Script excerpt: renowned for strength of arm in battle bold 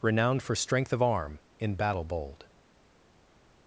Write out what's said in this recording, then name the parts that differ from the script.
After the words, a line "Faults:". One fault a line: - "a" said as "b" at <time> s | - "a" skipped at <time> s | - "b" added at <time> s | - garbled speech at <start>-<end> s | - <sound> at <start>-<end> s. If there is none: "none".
renowned for strength of arm in battle bold
Faults:
none